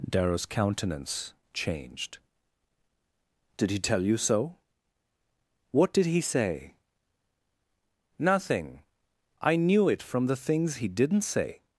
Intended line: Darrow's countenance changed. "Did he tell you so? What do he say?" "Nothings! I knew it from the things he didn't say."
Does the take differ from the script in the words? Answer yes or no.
yes